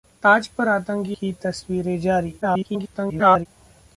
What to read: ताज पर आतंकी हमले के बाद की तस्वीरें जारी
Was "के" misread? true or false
true